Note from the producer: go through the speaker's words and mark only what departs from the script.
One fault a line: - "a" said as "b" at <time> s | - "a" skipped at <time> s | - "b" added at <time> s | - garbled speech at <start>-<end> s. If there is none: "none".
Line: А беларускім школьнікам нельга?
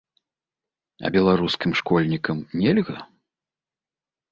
none